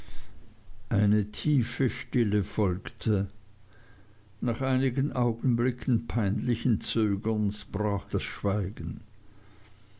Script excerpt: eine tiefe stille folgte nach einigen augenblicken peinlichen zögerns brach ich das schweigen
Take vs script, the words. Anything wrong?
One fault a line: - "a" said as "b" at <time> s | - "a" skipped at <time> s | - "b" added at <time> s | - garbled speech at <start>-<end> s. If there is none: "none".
- "ich" skipped at 8.1 s